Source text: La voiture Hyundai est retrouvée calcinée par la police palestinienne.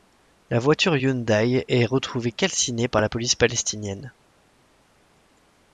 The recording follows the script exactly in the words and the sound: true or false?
true